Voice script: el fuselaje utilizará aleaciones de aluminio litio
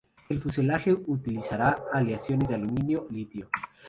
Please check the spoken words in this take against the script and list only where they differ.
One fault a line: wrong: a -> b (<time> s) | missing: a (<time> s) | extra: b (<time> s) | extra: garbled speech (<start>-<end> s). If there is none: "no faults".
no faults